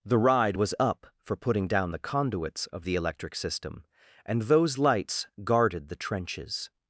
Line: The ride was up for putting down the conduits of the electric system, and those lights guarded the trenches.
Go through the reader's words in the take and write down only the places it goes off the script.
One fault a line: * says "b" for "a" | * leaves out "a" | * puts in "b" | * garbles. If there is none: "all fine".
all fine